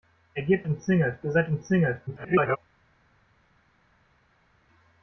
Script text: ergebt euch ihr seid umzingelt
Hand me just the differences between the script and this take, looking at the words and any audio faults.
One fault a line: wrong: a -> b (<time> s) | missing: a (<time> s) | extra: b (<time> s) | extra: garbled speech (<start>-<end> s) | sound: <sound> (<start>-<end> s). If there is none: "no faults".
wrong: euch -> umzingelt (0.7 s)
extra: garbled speech (2.1-2.6 s)